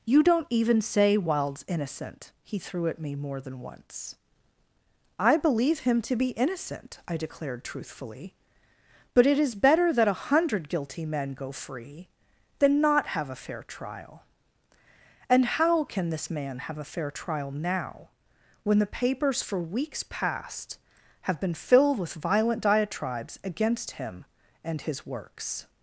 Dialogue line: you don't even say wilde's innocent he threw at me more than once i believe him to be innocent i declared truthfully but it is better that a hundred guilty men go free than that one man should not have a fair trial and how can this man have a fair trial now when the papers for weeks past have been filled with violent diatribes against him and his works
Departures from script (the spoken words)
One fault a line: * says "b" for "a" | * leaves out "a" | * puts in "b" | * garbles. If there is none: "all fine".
* leaves out "that one man should"